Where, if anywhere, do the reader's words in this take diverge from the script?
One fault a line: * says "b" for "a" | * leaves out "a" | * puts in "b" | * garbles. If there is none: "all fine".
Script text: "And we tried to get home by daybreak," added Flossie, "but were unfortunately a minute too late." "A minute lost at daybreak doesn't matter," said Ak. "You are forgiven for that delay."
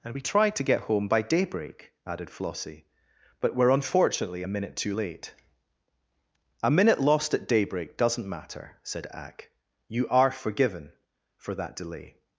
all fine